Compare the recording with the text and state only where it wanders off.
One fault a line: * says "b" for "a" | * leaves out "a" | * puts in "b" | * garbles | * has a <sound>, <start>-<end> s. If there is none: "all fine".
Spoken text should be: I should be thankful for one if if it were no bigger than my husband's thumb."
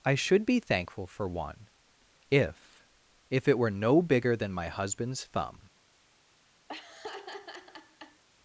* has a laugh, 6.7-8.2 s